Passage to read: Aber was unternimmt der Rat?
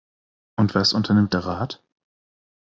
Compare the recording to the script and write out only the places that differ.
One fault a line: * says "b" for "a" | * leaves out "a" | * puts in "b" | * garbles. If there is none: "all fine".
* says "Und" for "Aber"